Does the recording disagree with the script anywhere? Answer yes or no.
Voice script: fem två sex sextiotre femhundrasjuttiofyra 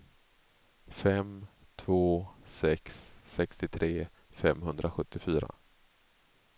no